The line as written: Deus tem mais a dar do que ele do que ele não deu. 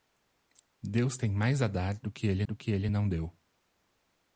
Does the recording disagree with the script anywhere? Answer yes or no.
no